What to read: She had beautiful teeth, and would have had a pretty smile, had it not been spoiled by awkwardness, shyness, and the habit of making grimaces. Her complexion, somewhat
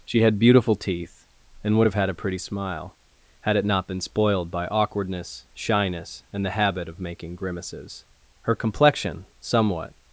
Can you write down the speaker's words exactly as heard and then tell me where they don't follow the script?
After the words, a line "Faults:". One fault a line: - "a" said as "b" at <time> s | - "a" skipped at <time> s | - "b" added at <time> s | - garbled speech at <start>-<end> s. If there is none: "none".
She had beautiful teeth, and would have had a pretty smile, had it not been spoiled by awkwardness, shyness, and the habit of making grimaces. Her complexion, somewhat
Faults:
none